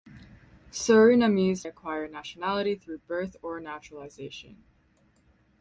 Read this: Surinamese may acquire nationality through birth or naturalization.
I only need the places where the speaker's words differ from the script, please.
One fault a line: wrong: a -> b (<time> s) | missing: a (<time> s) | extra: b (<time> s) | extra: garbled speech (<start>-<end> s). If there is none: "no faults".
missing: may (1.7 s)